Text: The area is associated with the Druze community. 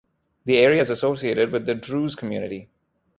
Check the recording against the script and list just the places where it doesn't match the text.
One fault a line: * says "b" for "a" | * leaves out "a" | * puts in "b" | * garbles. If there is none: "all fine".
all fine